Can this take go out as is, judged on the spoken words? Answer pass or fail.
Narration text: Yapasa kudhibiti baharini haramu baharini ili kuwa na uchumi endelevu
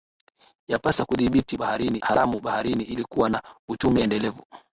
pass